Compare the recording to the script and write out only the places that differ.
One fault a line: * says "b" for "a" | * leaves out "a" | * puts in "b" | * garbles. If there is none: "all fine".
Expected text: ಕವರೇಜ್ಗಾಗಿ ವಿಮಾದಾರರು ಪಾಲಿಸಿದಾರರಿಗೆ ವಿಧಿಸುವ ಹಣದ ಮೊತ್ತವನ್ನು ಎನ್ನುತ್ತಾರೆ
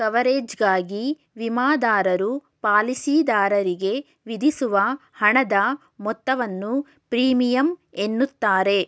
* puts in "ಪ್ರೀಮಿಯಂ"